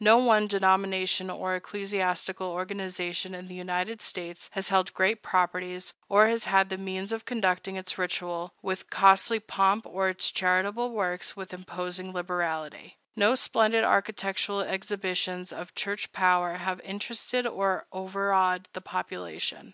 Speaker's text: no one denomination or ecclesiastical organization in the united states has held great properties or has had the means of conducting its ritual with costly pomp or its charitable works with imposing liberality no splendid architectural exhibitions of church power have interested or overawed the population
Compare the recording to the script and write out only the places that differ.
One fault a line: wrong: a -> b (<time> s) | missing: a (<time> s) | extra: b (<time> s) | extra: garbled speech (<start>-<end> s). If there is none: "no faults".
no faults